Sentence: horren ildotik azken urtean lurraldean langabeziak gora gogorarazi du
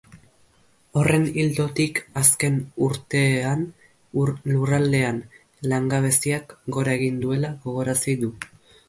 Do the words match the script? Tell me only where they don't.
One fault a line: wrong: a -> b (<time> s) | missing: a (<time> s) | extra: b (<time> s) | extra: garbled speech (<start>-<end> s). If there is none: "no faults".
extra: egin duela (7.0 s)